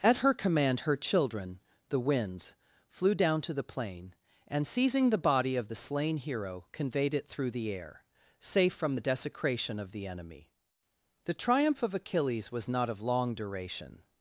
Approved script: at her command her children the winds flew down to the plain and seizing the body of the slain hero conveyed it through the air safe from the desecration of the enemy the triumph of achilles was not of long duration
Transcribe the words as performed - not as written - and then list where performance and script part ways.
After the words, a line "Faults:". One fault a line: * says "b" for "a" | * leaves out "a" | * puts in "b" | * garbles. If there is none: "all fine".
at her command her children the winds flew down to the plain and seizing the body of the slain hero conveyed it through the air safe from the desecration of the enemy the triumph of achilles was not of long duration
Faults:
all fine